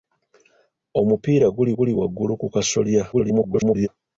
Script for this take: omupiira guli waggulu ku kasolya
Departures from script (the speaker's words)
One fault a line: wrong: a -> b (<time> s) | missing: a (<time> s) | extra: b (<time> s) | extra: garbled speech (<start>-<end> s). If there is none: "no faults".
extra: guli (1.8 s)
extra: garbled speech (3.1-3.9 s)